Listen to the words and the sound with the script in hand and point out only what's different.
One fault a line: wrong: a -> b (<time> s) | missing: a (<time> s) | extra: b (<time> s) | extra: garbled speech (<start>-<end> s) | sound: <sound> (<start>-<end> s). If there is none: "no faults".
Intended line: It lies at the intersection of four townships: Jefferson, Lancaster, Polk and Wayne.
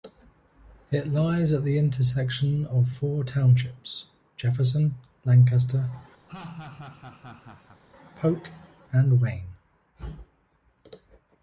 sound: laugh (6.3-7.8 s)